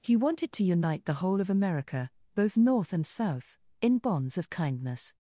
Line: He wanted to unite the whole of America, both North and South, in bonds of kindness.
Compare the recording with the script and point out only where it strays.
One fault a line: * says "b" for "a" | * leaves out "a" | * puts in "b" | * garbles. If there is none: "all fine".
all fine